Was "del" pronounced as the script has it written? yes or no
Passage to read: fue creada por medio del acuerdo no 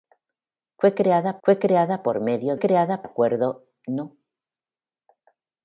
no